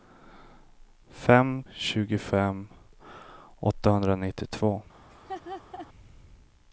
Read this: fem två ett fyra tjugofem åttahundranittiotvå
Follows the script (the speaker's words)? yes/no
no